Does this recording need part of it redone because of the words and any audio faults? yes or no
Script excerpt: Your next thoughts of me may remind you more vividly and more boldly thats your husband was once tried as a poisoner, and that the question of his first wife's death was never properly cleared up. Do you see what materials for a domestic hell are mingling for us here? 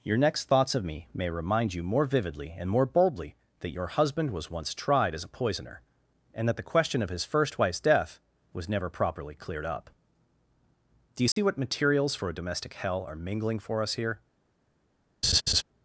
yes